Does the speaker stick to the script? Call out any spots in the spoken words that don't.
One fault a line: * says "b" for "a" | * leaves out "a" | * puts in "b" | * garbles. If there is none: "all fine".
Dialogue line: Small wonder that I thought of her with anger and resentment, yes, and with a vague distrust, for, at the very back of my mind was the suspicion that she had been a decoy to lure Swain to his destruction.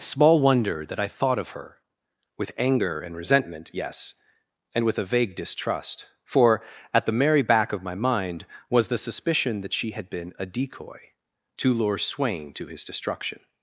* says "merry" for "very"